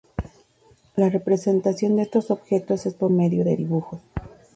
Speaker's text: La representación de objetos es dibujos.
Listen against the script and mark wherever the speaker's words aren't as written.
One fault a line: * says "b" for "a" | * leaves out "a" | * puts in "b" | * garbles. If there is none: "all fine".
* puts in "estos"
* puts in "por medio de"